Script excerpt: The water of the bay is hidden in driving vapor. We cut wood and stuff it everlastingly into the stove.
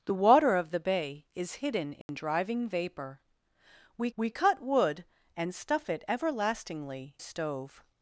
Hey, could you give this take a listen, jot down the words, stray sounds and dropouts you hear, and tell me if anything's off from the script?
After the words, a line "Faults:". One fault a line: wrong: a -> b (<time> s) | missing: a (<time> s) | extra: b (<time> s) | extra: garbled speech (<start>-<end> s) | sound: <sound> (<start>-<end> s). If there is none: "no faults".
The water of the bay is hidden in driving vapor. We we cut wood and stuff it everlastingly stove.
Faults:
sound: dropout (2.0-2.1 s)
extra: we (4.2 s)
missing: into the (7.2 s)